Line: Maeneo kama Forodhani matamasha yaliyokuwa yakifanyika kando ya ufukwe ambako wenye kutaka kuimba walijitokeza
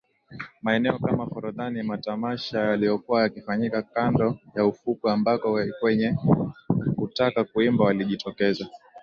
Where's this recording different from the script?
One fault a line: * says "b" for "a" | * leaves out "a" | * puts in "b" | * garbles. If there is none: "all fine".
all fine